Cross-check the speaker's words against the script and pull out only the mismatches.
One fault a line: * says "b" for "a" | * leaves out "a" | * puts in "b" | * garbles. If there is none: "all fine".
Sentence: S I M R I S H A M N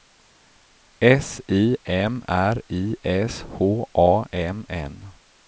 all fine